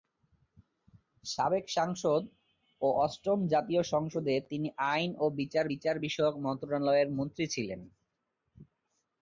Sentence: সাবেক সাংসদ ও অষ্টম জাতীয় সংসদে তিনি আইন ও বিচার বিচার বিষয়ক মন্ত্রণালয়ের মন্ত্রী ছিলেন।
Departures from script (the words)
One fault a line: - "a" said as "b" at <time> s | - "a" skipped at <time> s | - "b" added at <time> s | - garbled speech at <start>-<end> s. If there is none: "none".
none